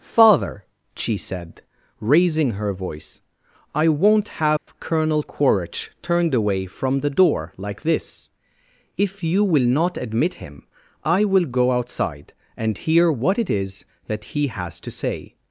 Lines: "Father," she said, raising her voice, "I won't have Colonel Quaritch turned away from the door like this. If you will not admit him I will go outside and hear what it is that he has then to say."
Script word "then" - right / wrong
wrong